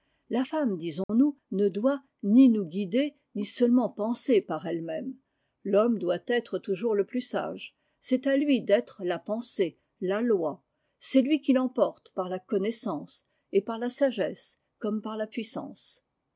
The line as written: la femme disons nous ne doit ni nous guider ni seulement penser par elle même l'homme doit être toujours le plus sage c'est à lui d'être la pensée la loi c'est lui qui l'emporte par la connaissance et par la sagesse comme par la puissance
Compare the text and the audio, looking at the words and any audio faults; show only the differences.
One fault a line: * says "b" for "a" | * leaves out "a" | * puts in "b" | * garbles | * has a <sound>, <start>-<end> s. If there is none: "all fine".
* has a dropout, 1.0-1.1 s